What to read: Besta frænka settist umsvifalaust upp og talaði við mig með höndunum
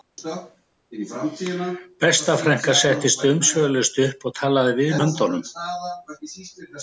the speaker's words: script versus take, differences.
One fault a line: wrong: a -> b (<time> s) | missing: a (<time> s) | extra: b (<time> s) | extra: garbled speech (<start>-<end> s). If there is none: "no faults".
missing: mig með (5.0 s)